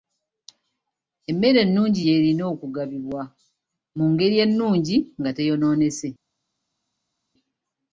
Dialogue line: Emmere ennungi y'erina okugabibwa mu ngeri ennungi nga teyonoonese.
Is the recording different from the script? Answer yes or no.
no